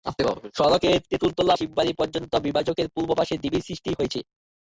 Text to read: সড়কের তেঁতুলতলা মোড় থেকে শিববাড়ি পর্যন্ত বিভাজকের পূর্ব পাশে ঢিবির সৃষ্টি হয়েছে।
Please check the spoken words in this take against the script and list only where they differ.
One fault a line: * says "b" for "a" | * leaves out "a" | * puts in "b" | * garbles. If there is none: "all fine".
* leaves out "মোড় থেকে"